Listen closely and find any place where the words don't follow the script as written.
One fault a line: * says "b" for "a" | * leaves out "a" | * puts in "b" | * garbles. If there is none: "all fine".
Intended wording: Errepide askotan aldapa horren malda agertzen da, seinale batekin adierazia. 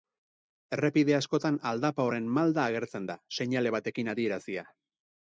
all fine